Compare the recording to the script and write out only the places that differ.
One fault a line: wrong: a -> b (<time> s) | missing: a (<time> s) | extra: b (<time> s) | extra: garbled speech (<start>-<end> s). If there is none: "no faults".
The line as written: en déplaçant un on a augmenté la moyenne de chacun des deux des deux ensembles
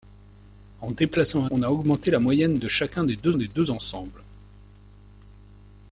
no faults